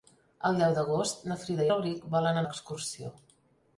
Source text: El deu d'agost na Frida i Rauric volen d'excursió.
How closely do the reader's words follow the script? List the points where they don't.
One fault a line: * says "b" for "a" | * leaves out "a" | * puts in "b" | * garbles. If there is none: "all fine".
all fine